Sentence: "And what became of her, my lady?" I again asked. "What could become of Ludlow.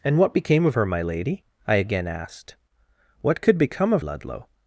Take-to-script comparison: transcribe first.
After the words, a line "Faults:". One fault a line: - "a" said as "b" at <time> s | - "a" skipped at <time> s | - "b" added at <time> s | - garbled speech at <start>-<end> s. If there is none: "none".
"And what became of her, my lady?" I again asked. "What could become of Ludlow.
Faults:
none